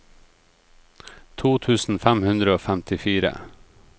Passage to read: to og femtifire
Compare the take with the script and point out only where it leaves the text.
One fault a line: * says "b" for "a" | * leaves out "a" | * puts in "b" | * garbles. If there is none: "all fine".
* puts in "tusen fem hundre"